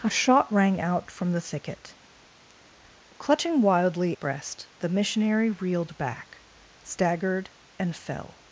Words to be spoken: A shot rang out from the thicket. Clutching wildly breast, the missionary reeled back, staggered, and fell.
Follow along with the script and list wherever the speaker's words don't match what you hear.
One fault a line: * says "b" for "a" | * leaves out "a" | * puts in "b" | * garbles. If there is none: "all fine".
all fine